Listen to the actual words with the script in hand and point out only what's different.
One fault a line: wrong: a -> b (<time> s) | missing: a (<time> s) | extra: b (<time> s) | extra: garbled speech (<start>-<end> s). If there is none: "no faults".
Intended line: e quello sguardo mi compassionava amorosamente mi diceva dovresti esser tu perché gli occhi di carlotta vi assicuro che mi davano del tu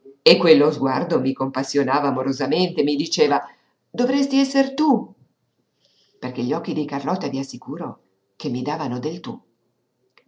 no faults